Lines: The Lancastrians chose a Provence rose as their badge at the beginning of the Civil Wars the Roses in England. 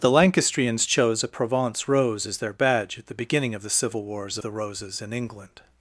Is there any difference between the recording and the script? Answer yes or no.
no